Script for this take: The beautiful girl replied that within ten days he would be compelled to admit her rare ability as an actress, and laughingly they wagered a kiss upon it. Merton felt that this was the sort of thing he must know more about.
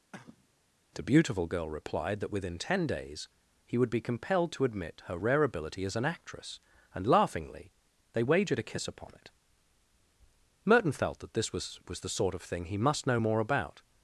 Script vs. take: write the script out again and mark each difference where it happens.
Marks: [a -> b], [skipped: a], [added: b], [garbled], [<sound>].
[cough] The beautiful girl replied that within ten days he would be compelled to admit her rare ability as an actress, and laughingly they wagered a kiss upon it. Merton felt that this was [added: was] the sort of thing he must know more about.